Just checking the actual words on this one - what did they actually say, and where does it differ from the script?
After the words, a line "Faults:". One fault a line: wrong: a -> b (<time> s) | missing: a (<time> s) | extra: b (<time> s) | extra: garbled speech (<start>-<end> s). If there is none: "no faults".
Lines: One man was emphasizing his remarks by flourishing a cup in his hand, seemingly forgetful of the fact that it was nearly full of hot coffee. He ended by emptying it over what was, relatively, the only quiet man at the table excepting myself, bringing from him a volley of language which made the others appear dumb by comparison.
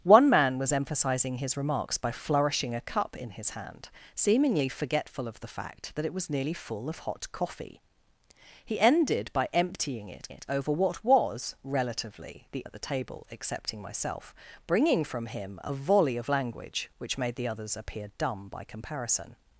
One man was emphasizing his remarks by flourishing a cup in his hand, seemingly forgetful of the fact that it was nearly full of hot coffee. He ended by emptying it it over what was, relatively, the at the table excepting myself, bringing from him a volley of language which made the others appear dumb by comparison.
Faults:
extra: it (10.3 s)
missing: only quiet man (12.6 s)